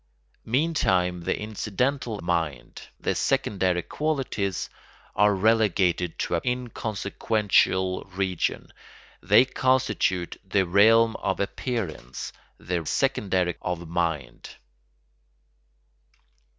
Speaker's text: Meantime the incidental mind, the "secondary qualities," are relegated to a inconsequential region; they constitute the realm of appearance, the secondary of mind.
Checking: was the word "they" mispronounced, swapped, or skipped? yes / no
no